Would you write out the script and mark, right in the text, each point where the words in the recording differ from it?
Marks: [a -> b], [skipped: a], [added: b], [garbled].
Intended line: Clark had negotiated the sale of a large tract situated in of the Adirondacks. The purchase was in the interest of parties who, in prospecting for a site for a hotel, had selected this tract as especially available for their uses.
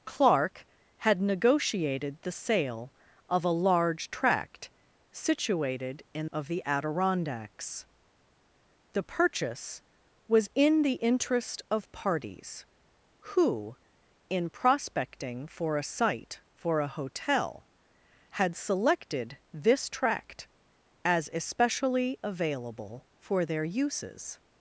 Clark had negotiated the sale of a large tract situated in of the Adirondacks. The purchase was in the interest of parties who, in prospecting for a site for a hotel, had selected this tract as especially available for their uses.